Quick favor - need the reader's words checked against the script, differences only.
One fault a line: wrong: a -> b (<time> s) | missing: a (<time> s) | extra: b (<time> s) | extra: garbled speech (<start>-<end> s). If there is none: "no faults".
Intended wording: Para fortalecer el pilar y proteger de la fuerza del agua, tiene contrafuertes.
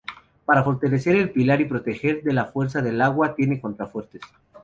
no faults